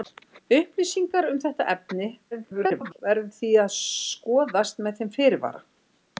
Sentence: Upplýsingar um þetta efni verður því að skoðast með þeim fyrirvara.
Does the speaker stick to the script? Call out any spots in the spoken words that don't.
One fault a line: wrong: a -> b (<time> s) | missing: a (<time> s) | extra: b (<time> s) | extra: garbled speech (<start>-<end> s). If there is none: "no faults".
extra: garbled speech (2.3-3.0 s)